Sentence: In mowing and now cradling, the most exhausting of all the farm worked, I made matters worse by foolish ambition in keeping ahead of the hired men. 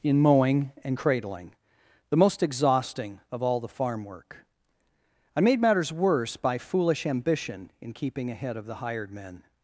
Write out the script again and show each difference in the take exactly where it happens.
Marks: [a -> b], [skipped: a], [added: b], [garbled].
In mowing and [skipped: now] cradling, the most exhausting of all the farm [worked, -> work] I made matters worse by foolish ambition in keeping ahead of the hired men.